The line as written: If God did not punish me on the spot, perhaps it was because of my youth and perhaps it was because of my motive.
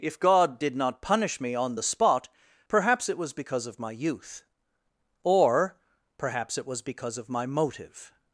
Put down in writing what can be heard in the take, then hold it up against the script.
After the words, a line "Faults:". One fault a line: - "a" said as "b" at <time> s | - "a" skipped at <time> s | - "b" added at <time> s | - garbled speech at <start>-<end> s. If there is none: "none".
If God did not punish me on the spot, perhaps it was because of my youth or perhaps it was because of my motive.
Faults:
- "and" said as "or" at 5.2 s